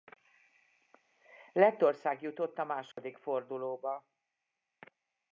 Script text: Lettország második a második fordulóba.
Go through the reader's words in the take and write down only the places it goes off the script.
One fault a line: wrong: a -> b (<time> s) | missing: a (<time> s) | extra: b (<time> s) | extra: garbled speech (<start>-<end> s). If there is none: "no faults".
wrong: második -> jutott (2.2 s)